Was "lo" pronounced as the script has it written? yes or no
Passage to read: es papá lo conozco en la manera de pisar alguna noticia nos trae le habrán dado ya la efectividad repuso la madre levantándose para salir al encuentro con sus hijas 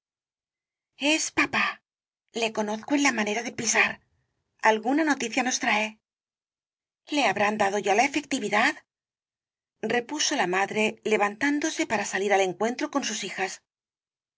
no